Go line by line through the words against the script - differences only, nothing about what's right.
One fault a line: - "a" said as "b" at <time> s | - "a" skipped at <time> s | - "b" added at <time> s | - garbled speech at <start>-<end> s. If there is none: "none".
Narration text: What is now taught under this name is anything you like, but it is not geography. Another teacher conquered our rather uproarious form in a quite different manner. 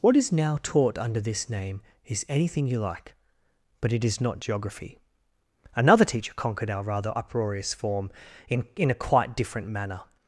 - "in" added at 8.8 s